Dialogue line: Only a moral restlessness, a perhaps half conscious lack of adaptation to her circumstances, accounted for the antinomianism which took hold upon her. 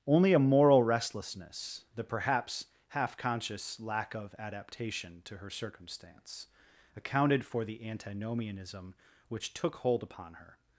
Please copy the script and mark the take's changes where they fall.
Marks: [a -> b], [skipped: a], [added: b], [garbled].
Only a moral restlessness, [a -> the] perhaps half conscious lack of adaptation to her [circumstances, -> circumstance] accounted for the antinomianism which took hold upon her.